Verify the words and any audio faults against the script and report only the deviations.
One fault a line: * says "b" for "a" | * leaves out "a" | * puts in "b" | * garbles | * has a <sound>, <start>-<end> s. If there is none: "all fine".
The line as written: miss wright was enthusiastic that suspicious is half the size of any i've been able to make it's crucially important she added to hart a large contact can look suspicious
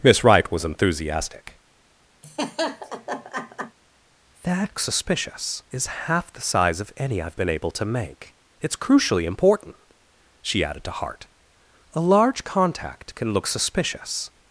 * has a laugh, 2.2-3.8 s